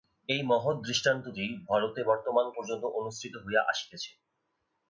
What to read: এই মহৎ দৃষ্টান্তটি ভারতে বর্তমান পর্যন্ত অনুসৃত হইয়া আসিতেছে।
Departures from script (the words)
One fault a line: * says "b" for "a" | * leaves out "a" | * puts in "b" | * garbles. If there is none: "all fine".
all fine